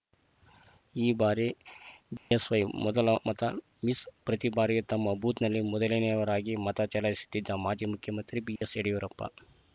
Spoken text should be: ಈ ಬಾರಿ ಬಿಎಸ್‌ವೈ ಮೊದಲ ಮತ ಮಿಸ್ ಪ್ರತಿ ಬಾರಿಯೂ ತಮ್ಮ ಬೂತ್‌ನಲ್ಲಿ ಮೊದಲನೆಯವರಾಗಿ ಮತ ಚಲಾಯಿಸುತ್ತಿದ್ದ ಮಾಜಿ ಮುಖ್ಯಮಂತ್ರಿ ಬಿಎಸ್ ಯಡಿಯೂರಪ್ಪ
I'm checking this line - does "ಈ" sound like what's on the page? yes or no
yes